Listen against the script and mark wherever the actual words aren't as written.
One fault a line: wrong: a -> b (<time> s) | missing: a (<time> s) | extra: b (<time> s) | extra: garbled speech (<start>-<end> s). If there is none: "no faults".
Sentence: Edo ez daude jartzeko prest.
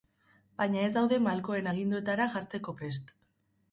wrong: Edo -> Baina (0.6 s)
extra: malkoen aginduetara (1.3 s)